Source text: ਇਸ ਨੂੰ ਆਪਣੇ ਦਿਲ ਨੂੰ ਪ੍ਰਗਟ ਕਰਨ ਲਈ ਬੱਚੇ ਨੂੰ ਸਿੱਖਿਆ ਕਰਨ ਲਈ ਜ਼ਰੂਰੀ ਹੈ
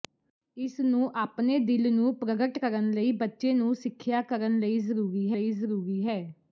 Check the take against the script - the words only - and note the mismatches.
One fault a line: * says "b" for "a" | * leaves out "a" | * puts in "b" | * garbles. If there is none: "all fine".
* puts in "ਲਈ ਜ਼ਰੂਰੀ"